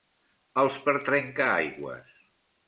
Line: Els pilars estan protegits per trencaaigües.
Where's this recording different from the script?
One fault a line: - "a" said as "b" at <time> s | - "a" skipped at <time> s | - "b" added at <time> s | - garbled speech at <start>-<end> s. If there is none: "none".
- "pilars estan protegits" skipped at 0.8 s